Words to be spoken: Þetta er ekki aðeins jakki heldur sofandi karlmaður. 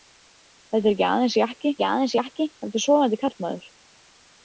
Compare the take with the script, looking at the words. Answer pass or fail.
fail